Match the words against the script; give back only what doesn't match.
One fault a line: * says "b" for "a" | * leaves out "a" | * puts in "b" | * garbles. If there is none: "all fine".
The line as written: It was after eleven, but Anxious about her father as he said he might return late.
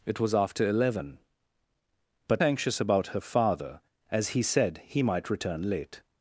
all fine